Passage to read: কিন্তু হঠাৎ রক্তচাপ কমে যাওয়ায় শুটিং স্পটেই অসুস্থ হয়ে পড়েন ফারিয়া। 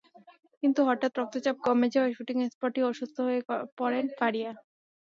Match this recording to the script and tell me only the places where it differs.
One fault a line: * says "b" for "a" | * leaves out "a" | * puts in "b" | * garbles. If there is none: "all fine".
all fine